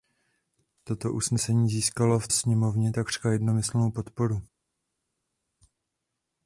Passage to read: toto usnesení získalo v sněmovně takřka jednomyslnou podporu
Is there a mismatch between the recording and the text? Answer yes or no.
no